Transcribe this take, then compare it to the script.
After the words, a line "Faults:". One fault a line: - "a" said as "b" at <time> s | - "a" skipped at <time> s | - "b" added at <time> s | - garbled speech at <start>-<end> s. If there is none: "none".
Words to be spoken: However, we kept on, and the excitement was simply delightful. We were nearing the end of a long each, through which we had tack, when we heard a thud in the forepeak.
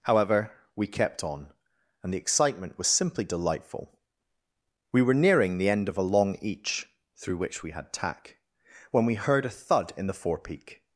However, we kept on, and the excitement was simply delightful. We were nearing the end of a long each, through which we had tack, when we heard a thud in the forepeak.
Faults:
none